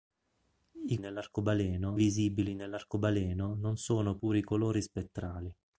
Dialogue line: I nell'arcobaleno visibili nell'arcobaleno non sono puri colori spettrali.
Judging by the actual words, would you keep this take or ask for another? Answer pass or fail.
pass